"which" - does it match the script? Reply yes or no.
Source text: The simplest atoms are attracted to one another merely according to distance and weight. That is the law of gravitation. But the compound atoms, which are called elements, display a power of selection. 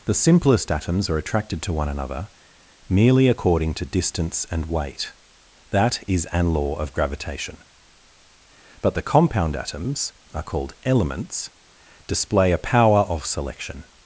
no